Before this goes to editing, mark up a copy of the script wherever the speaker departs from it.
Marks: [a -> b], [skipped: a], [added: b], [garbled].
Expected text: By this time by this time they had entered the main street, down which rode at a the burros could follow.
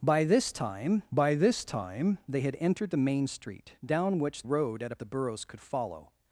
By this time by this time they had entered the main street, down which rode at a the burros could follow.